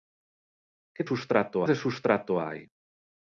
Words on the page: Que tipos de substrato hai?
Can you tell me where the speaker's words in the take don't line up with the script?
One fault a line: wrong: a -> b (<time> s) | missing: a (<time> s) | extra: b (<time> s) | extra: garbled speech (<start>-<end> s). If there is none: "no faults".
wrong: tipos -> substrato (1.1 s)